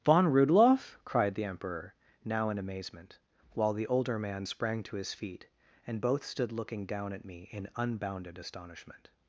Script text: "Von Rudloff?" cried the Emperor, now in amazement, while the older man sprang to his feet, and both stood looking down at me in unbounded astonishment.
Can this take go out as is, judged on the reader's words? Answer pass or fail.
pass